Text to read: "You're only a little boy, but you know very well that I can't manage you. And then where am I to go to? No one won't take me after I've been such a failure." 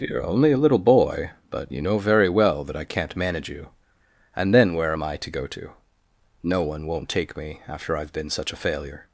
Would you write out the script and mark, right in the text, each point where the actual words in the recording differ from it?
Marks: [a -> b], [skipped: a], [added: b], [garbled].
"You're only a little boy, but you know very well that I can't manage you. And then where am I to go to? No one won't take me after I've been such a failure."